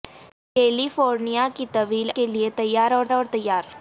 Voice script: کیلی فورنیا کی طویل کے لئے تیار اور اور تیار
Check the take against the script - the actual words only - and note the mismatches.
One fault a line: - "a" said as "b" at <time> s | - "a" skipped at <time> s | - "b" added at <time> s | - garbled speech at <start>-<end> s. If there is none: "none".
none